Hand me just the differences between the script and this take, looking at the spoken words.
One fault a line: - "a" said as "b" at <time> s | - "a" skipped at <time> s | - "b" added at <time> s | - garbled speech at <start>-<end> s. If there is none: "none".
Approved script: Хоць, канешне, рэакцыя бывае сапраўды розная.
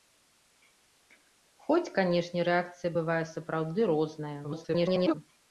- garbled speech at 4.4-5.1 s